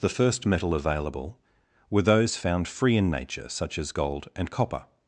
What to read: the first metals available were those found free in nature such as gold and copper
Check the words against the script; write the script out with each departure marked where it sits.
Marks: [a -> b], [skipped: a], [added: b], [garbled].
the first [metals -> metal] available were those found free in nature such as gold and copper